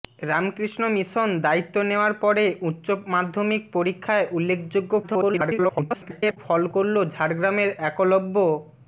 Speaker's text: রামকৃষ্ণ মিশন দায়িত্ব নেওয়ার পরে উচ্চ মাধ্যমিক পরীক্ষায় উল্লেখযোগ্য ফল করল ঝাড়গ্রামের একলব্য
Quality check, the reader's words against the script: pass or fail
fail